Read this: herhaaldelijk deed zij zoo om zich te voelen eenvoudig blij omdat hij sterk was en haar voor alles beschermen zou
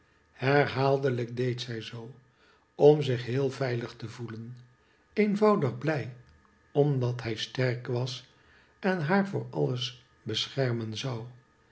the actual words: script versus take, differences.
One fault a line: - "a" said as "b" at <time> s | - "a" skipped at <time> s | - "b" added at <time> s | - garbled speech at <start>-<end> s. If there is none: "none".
- "heel veilig" added at 3.2 s